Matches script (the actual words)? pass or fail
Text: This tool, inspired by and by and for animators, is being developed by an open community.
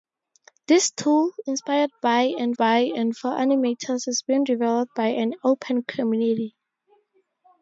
pass